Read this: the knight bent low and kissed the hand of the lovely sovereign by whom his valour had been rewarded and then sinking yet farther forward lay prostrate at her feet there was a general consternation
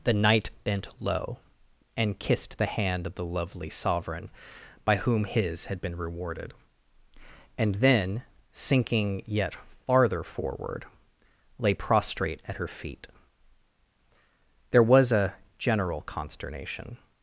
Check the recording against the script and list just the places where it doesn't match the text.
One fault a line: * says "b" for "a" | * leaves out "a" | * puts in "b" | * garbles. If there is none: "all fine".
* leaves out "valour"